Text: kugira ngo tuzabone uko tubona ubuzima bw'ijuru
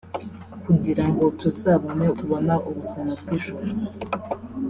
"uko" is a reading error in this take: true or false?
true